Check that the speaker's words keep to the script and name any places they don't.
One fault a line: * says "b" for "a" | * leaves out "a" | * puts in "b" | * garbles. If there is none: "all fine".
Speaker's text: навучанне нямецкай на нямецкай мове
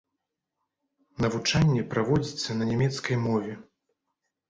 * says "праводзіцца" for "нямецкай"